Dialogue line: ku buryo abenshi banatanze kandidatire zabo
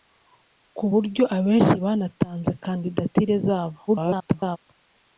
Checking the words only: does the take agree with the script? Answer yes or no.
no